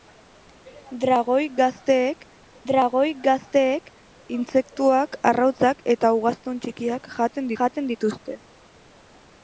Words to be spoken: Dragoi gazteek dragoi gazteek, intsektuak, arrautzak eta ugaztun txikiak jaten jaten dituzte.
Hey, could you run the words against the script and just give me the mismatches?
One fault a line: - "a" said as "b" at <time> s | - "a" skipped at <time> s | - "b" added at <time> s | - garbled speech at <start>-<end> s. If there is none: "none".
none